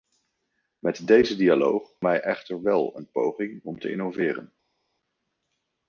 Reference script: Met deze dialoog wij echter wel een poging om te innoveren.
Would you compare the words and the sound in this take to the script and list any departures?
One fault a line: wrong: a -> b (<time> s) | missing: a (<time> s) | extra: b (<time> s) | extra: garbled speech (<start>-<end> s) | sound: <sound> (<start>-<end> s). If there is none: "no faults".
no faults